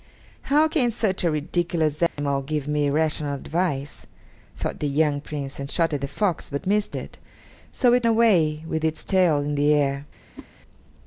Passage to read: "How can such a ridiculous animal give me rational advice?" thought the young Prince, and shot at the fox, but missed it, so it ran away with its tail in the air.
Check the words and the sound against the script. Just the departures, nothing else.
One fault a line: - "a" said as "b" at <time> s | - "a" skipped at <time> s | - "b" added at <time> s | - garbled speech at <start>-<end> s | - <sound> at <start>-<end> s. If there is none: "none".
- dropout at 2.1-2.2 s
- "ran" skipped at 8.1 s
- whoosh at 10.4-10.5 s